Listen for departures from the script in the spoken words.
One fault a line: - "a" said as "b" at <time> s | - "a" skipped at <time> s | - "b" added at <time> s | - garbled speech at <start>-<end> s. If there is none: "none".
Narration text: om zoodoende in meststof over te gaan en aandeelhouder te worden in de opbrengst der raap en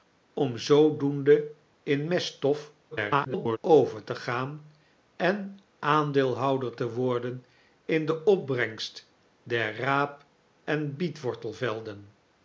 - garbled speech at 2.9-3.6 s